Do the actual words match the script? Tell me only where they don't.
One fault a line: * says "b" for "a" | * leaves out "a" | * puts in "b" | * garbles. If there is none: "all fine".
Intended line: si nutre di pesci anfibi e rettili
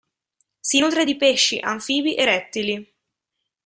all fine